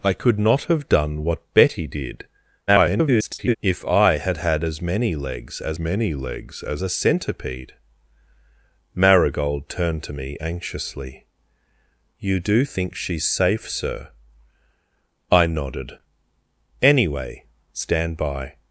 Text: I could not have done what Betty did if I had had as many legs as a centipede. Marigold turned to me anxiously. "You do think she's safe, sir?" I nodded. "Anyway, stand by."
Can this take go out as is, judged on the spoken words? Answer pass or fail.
fail